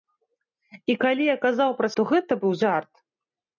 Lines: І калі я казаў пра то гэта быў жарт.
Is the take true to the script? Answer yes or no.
yes